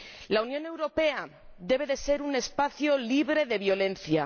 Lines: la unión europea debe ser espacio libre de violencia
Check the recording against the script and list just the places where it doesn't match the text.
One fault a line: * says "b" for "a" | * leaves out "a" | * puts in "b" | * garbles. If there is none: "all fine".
* puts in "un"